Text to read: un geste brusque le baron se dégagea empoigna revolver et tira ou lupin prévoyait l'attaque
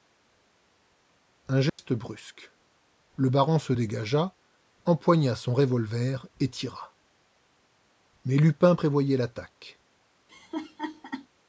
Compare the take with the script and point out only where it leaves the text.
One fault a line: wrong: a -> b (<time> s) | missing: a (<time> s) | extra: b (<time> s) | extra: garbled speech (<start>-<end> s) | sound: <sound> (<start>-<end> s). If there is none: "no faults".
sound: dropout (1.7-1.8 s)
extra: son (5.4 s)
wrong: ou -> mais (8.2 s)
sound: laugh (10.3-11.3 s)